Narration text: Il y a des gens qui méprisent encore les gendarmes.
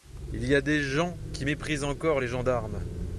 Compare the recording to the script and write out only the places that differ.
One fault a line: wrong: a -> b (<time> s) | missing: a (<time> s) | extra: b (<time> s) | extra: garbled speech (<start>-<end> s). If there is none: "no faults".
no faults